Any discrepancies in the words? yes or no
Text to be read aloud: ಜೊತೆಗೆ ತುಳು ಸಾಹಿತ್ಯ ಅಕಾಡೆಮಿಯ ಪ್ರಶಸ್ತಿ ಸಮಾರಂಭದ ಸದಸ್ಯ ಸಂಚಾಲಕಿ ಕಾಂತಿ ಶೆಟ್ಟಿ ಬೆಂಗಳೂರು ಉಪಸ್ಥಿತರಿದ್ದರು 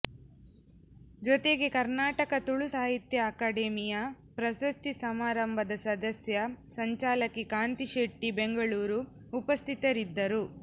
yes